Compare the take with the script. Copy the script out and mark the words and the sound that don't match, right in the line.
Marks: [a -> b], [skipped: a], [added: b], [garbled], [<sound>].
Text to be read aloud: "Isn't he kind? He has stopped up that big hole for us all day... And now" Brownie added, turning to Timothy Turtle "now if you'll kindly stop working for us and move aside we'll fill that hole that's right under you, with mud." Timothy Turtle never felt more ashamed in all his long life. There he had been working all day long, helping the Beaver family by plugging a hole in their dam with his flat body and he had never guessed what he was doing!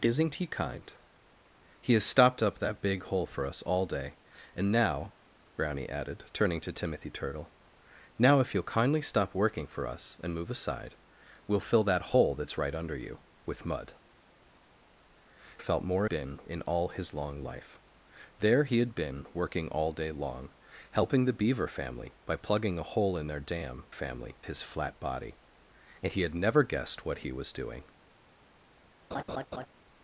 "Isn't he kind? He has stopped up that big hole for us all day... And now" Brownie added, turning to Timothy Turtle "now if you'll kindly stop working for us and move aside we'll fill that hole that's right under you, with mud." [skipped: Timothy Turtle never] felt more [ashamed -> been] in all his long life. There he had been working all day long, helping the Beaver family by plugging a hole in their dam [with -> family] his flat body and he had never guessed what he was doing! [laugh]